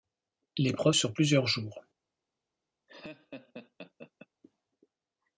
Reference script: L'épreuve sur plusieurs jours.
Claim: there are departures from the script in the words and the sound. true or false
true